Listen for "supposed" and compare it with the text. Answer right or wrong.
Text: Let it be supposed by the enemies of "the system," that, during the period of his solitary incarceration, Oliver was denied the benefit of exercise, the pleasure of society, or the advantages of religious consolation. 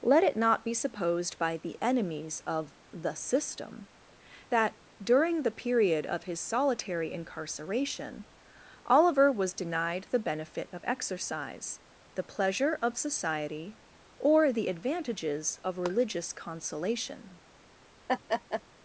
right